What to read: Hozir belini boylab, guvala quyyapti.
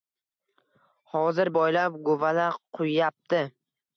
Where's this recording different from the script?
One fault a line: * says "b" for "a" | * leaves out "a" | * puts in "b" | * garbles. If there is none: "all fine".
* leaves out "belini"